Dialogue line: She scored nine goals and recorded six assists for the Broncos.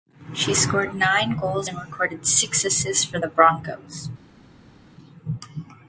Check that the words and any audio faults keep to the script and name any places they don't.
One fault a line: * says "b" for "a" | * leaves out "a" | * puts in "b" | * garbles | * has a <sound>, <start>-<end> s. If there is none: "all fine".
all fine